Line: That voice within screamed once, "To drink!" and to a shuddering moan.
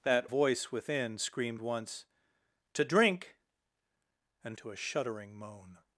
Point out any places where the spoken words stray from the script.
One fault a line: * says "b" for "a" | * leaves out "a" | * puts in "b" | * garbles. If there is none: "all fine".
all fine